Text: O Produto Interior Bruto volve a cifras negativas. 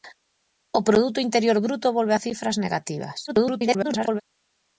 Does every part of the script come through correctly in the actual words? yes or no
no